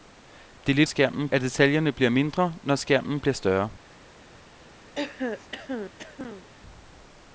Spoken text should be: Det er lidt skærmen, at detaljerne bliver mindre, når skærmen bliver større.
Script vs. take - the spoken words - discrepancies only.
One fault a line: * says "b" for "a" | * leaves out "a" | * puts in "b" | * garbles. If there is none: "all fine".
all fine